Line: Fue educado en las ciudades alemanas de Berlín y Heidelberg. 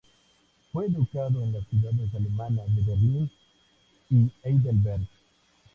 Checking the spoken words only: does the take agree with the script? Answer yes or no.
yes